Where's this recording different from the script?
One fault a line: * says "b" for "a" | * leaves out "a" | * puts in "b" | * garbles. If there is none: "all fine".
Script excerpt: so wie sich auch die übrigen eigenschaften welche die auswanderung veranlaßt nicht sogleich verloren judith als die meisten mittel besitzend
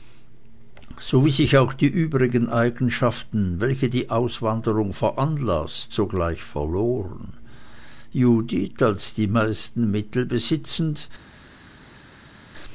* leaves out "nicht"